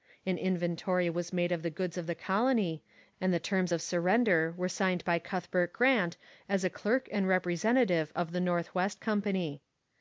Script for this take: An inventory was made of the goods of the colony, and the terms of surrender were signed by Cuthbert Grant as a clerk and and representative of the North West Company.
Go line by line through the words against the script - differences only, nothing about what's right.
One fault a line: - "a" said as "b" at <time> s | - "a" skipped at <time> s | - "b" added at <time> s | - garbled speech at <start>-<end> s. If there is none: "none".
- "and" skipped at 7.3 s